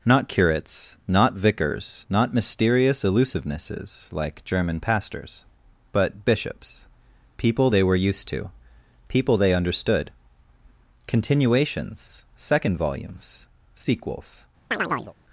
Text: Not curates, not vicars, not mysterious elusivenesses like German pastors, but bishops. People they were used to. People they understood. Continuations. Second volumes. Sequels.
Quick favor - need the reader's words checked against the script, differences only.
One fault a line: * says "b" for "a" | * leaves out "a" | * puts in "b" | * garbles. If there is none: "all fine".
all fine